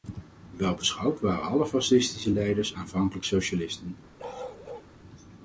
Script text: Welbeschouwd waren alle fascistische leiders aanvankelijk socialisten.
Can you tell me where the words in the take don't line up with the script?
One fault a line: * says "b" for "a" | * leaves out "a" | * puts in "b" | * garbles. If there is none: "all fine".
all fine